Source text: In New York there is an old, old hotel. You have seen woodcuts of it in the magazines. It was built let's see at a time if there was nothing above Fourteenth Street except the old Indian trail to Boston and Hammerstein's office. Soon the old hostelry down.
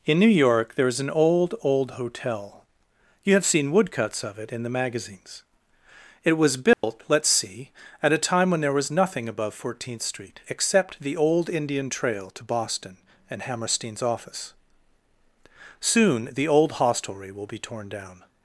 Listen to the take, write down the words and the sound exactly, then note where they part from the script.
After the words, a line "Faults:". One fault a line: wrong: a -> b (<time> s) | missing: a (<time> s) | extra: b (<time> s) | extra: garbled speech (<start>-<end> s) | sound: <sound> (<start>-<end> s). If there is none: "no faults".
In New York there is an old, old hotel. You have seen woodcuts of it in the magazines. It was built let's see at a time when there was nothing above Fourteenth Street except the old Indian trail to Boston and Hammerstein's office. Soon the old hostelry will be torn down.
Faults:
sound: dropout (6.7-6.8 s)
wrong: if -> when (8.5 s)
extra: will be torn (17.3 s)